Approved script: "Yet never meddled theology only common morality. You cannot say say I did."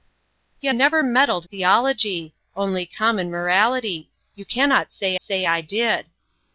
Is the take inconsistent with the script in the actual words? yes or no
no